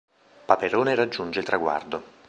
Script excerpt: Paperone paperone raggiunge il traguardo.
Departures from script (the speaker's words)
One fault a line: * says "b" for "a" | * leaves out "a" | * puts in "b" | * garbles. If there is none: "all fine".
* leaves out "paperone"